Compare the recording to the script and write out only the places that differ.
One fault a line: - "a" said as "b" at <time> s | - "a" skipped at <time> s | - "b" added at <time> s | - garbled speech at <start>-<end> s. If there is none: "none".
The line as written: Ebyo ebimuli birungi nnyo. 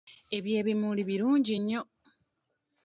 none